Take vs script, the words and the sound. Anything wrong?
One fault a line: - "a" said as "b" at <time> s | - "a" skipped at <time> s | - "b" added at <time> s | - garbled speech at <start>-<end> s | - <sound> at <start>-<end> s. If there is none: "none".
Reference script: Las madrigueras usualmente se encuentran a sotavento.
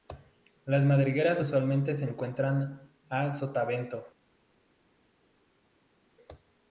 none